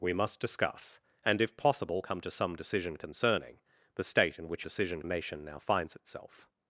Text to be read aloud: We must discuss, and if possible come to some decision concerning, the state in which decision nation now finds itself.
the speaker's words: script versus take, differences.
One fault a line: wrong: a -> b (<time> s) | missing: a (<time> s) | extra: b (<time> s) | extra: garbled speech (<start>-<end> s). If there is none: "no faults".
no faults